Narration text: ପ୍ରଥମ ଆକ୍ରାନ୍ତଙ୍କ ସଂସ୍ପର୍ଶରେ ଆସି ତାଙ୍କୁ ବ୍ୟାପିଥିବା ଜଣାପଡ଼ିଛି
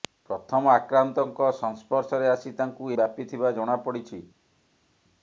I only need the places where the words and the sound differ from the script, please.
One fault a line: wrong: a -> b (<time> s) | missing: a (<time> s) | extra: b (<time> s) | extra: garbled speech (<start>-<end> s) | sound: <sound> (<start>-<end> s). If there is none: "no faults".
no faults